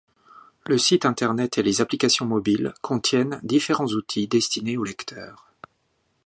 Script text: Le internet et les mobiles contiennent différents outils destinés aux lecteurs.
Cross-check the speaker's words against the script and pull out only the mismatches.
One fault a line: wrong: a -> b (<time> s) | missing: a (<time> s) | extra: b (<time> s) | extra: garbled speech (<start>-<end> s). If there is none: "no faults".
extra: site (0.8 s)
extra: applications (1.8 s)